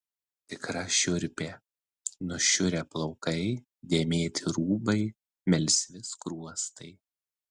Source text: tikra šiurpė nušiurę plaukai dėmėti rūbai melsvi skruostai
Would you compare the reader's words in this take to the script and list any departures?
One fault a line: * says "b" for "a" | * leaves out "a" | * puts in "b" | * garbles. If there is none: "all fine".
all fine